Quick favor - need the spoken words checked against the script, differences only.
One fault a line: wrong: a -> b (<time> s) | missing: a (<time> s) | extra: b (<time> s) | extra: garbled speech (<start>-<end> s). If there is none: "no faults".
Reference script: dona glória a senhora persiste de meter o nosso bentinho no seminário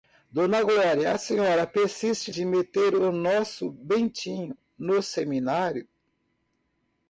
no faults